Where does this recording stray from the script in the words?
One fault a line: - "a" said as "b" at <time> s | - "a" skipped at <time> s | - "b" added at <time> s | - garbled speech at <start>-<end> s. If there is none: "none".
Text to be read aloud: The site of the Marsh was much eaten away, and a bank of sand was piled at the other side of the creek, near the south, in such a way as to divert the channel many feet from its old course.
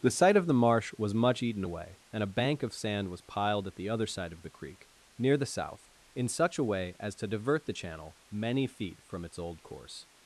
none